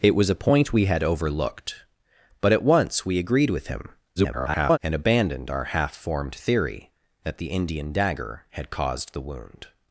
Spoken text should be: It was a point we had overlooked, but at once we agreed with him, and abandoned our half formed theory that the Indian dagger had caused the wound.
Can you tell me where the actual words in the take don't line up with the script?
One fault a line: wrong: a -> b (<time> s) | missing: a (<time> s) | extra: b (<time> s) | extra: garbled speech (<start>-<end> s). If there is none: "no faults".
extra: garbled speech (4.2-4.8 s)